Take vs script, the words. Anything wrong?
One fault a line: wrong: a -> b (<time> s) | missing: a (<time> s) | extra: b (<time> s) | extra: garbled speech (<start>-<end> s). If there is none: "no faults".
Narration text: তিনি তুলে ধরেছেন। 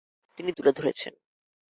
no faults